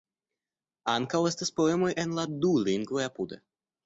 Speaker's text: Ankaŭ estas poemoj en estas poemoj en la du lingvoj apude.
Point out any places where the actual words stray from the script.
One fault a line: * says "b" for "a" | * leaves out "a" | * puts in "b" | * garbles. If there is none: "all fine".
* leaves out "estas poemoj en"